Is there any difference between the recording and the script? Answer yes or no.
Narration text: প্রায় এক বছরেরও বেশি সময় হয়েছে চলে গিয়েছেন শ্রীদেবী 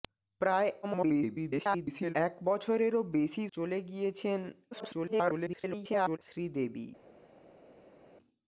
yes